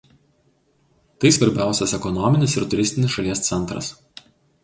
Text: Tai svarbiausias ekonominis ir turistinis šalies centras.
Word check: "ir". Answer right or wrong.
right